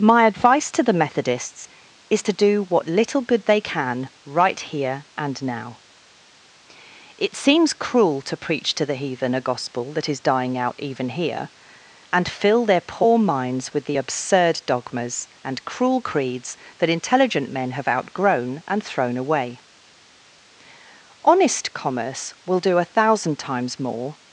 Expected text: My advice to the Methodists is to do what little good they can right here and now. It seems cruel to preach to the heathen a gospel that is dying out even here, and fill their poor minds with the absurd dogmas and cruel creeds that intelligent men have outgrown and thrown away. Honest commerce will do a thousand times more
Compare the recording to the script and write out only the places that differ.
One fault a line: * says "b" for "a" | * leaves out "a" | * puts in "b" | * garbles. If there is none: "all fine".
all fine